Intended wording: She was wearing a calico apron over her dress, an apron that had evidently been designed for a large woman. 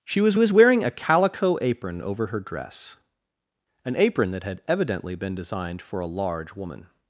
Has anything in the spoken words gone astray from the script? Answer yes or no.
yes